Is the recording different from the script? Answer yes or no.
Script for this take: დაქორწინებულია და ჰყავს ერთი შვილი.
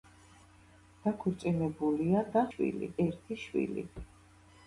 yes